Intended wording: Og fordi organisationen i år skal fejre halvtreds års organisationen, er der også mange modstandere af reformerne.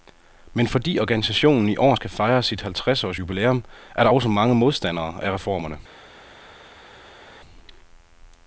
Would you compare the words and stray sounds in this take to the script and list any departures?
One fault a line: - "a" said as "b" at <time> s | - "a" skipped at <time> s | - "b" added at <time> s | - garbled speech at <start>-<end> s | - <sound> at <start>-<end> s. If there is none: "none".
- "Og" said as "Men" at 0.5 s
- "sit" added at 2.4 s
- "organisationen" said as "jubilæum" at 3.2 s